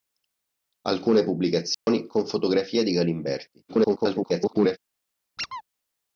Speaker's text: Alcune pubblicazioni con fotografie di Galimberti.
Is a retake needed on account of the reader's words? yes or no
yes